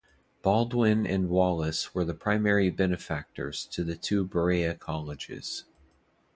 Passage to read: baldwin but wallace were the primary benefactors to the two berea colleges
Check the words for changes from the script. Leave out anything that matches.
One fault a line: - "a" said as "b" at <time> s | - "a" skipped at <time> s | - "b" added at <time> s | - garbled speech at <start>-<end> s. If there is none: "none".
- "but" said as "and" at 1.0 s